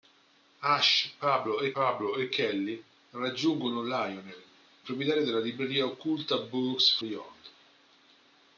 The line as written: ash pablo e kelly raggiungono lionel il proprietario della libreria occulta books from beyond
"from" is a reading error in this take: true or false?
true